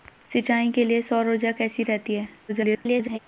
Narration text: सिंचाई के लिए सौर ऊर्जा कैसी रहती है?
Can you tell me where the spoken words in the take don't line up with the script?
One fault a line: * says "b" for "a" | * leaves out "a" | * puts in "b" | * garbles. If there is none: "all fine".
* garbles